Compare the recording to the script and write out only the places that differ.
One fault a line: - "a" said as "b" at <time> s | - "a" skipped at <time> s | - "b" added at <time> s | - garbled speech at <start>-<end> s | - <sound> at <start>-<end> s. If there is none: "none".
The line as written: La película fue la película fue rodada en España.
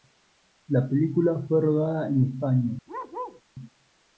- "la película fue" skipped at 1.6 s
- bark at 2.9-3.4 s